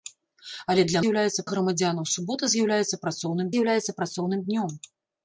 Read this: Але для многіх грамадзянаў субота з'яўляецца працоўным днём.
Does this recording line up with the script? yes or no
no